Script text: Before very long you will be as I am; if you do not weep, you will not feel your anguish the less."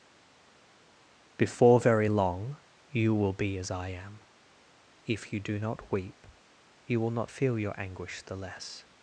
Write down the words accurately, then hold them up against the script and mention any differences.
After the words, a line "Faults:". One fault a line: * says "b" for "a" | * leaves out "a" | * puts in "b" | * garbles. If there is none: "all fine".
Before very long you will be as I am; if you do not weep, you will not feel your anguish the less."
Faults:
all fine